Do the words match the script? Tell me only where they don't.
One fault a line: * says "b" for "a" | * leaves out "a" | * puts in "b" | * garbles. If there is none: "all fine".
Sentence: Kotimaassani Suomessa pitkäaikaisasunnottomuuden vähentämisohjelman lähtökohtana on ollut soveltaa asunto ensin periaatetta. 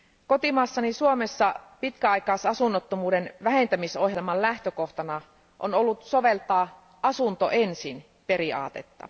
all fine